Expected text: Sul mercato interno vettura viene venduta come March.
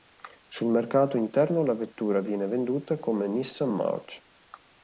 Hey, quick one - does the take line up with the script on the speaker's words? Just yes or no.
no